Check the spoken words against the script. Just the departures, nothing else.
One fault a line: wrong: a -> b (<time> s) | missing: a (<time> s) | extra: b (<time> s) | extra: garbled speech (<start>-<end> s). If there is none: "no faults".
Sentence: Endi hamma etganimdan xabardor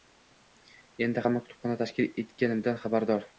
extra: kutubxona tashkil (1.4 s)